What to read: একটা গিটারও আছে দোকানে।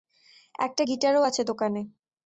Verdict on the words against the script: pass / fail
pass